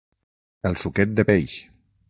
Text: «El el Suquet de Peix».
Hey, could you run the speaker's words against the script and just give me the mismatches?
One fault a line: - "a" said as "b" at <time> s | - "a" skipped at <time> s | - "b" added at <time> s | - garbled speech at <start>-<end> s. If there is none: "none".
- "el" skipped at 0.8 s